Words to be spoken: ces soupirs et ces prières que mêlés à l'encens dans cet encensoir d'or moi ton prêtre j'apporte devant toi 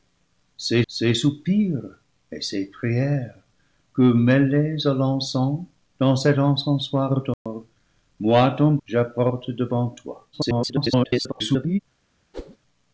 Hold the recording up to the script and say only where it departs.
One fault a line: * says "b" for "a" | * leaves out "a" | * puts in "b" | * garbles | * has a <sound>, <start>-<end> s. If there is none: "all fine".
* puts in "ces"
* has a dropout, 7.3-7.5 s
* leaves out "prêtre"
* garbles
* has a whoosh, 12.3-12.6 s